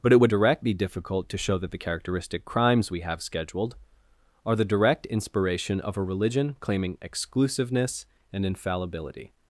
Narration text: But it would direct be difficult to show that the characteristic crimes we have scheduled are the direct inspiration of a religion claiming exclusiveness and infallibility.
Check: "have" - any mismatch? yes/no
no